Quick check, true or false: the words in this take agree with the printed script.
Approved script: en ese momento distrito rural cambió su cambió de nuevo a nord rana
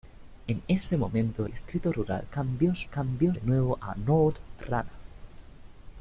true